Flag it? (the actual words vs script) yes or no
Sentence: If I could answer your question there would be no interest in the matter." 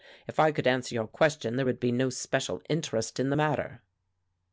yes